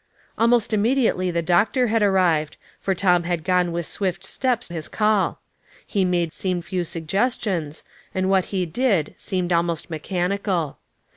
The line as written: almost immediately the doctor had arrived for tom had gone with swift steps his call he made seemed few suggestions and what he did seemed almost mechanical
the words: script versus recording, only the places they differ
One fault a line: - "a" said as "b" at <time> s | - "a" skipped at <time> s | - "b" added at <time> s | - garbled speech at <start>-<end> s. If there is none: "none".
none